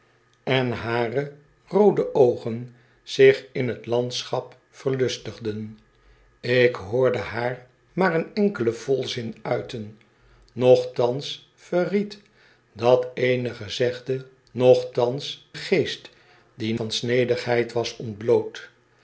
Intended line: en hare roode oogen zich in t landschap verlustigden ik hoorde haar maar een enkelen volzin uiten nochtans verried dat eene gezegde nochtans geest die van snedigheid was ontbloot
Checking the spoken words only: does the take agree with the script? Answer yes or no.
yes